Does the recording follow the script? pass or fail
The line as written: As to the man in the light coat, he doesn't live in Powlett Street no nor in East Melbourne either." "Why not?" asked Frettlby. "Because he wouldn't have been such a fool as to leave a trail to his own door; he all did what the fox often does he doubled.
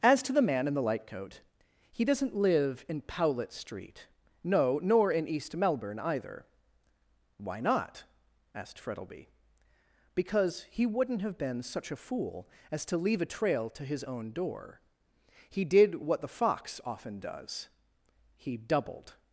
fail